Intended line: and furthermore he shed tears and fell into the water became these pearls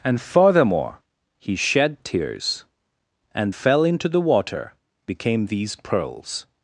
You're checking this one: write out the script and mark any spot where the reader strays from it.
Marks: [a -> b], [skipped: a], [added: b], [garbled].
and furthermore he shed tears and fell into the water became these pearls